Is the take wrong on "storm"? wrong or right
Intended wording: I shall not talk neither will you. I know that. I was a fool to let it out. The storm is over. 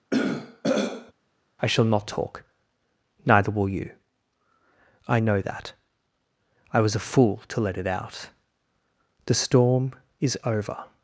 right